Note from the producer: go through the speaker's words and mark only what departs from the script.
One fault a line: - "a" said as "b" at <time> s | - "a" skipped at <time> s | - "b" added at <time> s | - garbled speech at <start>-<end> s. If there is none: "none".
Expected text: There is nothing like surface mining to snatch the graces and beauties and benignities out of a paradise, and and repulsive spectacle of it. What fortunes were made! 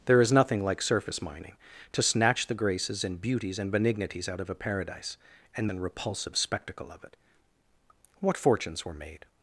none